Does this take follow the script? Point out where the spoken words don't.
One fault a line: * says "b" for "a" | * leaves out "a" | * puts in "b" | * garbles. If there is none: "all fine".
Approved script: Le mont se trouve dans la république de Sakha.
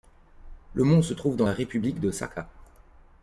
all fine